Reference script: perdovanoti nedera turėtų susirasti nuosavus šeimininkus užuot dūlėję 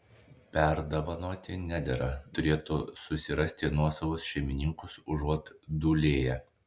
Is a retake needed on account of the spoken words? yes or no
no